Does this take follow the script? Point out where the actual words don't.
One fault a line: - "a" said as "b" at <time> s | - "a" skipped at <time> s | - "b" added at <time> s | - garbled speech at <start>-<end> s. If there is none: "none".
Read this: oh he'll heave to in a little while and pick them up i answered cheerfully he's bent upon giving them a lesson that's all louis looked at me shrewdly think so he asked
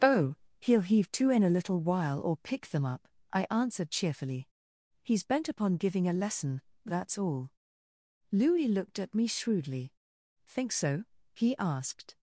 - "and" said as "or" at 2.2 s
- "them" skipped at 6.1 s